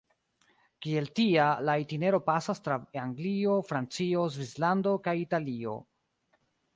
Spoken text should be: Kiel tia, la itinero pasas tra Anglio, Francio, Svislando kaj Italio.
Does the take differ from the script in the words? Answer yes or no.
no